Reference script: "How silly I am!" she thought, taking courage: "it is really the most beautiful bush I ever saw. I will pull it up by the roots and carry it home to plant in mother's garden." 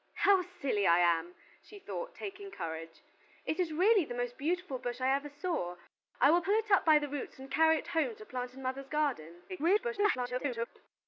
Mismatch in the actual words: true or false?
true